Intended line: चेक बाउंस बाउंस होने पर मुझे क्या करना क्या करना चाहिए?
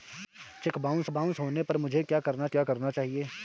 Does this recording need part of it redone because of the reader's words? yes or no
no